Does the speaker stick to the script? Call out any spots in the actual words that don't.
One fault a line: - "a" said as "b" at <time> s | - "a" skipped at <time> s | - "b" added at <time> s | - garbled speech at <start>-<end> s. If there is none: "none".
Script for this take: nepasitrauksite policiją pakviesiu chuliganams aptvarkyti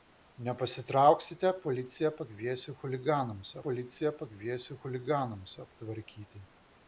- "policiją pakviesiu chuliganams" added at 3.7 s